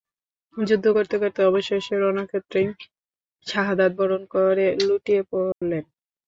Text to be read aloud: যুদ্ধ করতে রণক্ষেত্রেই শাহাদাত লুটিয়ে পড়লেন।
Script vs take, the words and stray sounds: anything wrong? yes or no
yes